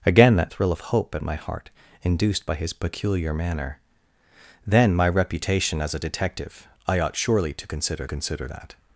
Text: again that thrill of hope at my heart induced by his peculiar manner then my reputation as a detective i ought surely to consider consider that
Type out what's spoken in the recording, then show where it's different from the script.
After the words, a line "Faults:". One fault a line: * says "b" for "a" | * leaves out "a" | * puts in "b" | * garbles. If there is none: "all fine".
again that thrill of hope at my heart induced by his peculiar manner then my reputation as a detective i ought surely to consider consider that
Faults:
all fine